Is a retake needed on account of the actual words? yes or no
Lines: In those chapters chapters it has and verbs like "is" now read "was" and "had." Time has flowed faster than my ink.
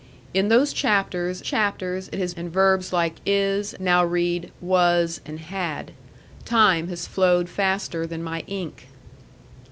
no